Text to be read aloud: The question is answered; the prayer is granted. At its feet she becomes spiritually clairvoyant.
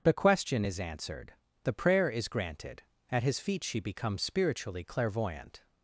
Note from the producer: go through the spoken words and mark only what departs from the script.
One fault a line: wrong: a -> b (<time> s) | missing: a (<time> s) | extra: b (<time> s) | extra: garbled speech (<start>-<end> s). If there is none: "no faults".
wrong: its -> his (3.2 s)